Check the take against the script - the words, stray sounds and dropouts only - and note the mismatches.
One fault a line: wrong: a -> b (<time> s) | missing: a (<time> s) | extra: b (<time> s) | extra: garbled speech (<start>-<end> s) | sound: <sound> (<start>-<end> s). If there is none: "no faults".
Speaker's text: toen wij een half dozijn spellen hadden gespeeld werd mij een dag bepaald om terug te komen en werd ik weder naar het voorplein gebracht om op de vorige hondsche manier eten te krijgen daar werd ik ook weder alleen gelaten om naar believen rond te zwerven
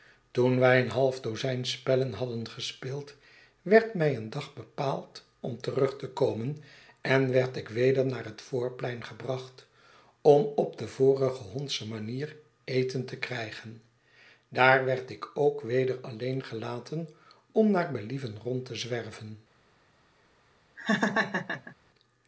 sound: laugh (20.8-21.8 s)